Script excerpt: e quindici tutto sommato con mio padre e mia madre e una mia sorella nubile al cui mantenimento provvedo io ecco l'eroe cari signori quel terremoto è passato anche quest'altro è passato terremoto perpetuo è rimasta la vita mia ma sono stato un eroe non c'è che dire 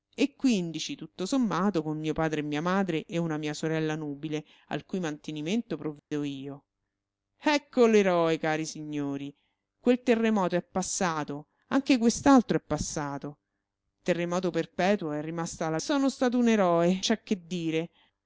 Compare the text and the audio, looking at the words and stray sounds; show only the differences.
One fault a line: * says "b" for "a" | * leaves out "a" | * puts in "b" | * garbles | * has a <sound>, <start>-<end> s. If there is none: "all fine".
* has a dropout, 6.0-6.1 s
* leaves out "vita mia ma"
* leaves out "non"